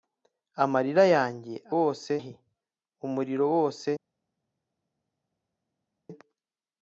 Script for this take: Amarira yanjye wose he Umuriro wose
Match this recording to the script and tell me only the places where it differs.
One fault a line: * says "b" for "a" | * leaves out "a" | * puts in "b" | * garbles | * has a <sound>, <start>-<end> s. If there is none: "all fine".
all fine